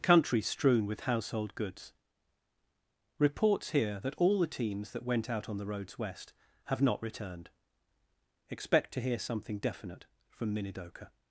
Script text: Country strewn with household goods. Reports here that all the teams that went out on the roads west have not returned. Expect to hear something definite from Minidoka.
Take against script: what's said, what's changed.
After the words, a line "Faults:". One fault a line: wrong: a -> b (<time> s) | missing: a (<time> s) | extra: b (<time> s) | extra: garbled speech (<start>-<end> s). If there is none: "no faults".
Country strewn with household goods. Reports here that all the teams that went out on the roads west have not returned. Expect to hear something definite from Minidoka.
Faults:
no faults